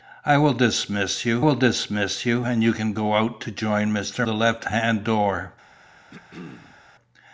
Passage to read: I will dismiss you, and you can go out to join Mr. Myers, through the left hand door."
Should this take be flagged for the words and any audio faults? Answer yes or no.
yes